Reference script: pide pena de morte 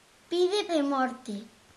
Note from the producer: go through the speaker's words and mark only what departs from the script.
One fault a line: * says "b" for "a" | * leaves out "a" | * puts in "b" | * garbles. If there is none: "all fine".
* leaves out "pena"